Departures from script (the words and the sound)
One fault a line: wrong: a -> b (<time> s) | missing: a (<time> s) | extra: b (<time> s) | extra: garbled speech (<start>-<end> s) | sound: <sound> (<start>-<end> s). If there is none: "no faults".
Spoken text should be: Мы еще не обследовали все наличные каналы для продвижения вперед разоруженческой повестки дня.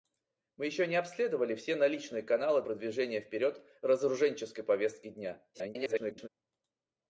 missing: для (2.6 s)
extra: garbled speech (5.5-6.3 s)